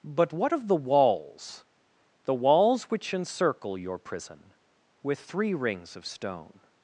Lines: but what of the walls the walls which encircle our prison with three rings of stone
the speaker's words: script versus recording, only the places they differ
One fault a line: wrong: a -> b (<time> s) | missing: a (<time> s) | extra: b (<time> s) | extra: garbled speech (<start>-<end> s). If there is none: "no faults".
wrong: our -> your (3.8 s)